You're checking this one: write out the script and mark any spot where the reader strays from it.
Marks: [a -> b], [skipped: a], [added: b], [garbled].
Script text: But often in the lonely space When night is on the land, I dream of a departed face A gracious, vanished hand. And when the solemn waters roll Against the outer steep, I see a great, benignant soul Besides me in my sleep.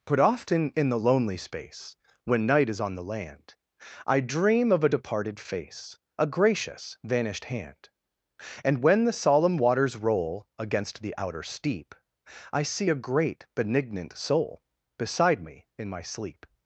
But often in the lonely space When night is on the land, I dream of a departed face A gracious, vanished hand. And when the solemn waters roll Against the outer steep, I see a great, benignant soul [Besides -> Beside] me in my sleep.